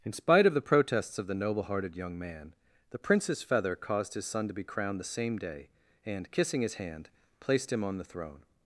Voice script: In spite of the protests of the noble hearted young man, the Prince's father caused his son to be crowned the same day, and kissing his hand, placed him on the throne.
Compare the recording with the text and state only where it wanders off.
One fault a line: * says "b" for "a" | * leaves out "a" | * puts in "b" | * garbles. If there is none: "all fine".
* says "feather" for "father"